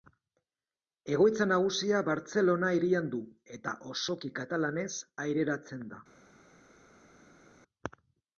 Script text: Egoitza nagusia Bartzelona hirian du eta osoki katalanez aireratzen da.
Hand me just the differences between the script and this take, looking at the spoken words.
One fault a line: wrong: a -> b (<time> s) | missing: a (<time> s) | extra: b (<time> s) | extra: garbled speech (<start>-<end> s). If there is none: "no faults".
no faults